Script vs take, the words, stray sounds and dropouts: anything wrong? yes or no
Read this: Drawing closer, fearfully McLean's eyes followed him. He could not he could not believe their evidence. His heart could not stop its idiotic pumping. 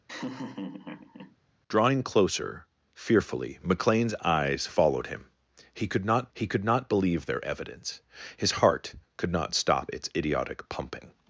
yes